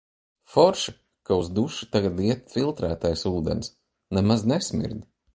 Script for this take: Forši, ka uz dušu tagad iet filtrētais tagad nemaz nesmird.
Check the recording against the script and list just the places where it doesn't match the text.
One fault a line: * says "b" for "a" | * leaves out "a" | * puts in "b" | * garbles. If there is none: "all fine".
* says "ūdens" for "tagad"